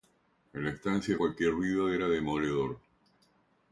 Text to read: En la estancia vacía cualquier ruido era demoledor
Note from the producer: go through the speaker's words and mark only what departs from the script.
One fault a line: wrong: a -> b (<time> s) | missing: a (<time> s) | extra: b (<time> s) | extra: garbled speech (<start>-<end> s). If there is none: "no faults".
missing: vacía (1.1 s)